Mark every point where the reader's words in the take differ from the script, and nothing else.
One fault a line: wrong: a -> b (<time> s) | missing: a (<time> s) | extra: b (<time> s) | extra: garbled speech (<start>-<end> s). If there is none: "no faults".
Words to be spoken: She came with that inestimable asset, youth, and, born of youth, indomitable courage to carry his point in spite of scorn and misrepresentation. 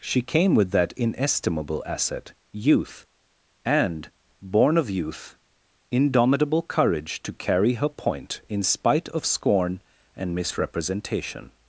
wrong: his -> her (7.7 s)